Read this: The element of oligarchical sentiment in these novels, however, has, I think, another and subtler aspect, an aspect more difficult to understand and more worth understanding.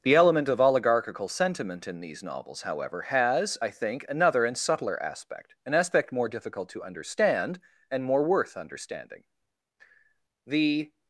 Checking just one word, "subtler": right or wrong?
right